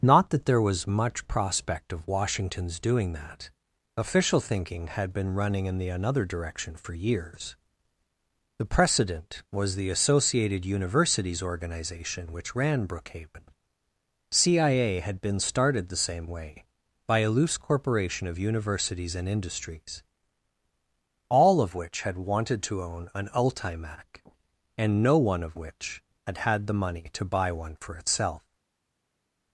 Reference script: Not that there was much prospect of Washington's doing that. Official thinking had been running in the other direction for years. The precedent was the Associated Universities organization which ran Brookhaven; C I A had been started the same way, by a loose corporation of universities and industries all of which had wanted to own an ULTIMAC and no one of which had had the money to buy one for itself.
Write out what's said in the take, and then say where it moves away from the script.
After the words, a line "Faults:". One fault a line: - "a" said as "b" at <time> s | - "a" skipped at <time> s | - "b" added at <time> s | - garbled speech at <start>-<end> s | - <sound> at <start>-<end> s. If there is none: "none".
Not that there was much prospect of Washington's doing that. Official thinking had been running in the another direction for years. The precedent was the Associated Universities organization which ran Brookhaven; C I A had been started the same way, by a loose corporation of universities and industries all of which had wanted to own an ULTIMAC and no one of which had had the money to buy one for itself.
Faults:
- "other" said as "another" at 5.9 s